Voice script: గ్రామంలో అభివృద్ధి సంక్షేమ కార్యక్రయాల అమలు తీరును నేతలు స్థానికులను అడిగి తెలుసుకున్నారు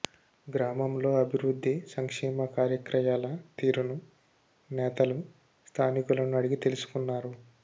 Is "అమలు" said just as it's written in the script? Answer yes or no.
no